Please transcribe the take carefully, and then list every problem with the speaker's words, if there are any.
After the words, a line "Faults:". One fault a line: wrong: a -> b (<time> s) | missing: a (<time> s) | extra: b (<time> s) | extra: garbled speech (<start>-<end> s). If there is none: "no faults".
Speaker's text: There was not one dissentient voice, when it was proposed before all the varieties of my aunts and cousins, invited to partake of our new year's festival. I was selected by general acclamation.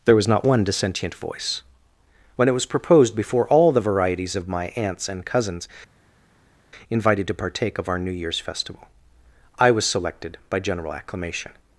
There was not one dissentient voice, when it was proposed before all the varieties of my aunts and cousins, invited to partake of our new year's festival. I was selected by general acclamation.
Faults:
no faults